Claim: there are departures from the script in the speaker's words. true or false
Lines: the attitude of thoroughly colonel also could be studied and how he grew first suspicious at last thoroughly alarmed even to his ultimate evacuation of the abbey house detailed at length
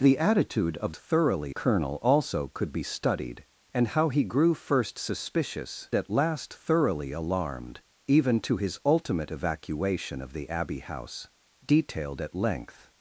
false